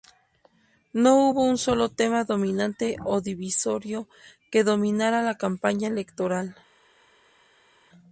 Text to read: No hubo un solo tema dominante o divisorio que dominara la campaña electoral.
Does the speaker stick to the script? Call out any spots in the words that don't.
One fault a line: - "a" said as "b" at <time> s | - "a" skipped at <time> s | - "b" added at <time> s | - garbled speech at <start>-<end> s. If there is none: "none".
none